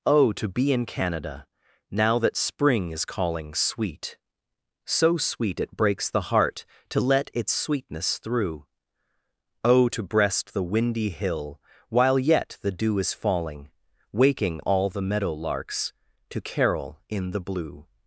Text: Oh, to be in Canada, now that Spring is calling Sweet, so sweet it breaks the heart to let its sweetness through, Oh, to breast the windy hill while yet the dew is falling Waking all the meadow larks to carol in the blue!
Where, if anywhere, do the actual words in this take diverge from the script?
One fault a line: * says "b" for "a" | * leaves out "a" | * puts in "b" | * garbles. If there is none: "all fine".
all fine